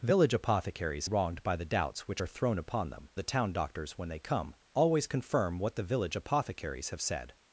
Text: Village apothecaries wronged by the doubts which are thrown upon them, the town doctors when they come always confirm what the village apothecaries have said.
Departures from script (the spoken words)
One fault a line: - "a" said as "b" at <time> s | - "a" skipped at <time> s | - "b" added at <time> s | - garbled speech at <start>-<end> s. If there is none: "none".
none